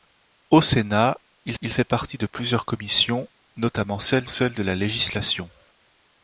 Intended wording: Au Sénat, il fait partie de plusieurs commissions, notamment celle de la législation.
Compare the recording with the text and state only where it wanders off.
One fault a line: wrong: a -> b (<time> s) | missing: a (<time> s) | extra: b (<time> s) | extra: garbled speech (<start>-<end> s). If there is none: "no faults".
extra: il (1.6 s)
extra: celle (4.3 s)